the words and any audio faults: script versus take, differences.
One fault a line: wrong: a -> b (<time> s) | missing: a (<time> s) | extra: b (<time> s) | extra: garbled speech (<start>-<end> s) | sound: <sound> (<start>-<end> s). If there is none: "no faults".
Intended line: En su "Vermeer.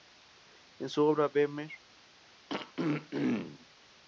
extra: obra (1.1 s)
sound: throat clearing (2.5-3.7 s)